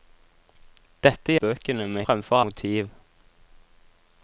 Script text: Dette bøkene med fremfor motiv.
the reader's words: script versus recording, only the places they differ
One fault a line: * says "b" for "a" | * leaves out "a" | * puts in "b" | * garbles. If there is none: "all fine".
all fine